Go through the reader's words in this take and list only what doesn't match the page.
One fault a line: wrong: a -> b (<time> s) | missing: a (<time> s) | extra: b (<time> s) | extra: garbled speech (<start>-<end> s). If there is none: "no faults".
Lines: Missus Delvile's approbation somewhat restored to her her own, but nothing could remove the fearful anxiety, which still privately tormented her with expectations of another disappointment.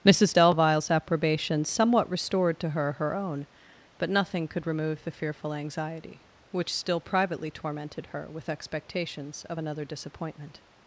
no faults